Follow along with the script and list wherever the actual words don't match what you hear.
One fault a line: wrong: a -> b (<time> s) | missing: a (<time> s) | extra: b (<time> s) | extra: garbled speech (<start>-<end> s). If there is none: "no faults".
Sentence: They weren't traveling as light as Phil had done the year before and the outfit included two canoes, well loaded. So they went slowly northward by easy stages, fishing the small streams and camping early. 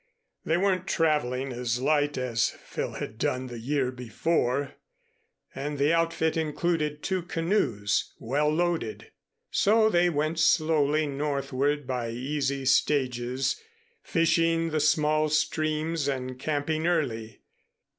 no faults